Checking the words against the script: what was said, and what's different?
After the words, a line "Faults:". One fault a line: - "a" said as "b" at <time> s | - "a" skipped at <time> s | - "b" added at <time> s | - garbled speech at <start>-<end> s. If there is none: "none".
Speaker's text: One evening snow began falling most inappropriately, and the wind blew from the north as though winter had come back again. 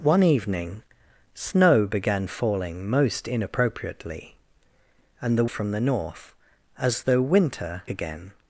One evening snow began falling most inappropriately, and the from the north as though winter again.
Faults:
- "wind blew" skipped at 5.5 s
- "had come back" skipped at 7.8 s